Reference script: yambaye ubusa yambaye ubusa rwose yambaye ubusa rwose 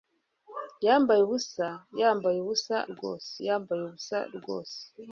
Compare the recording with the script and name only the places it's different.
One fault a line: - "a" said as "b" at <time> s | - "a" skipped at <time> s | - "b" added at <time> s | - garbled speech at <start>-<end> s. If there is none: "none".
none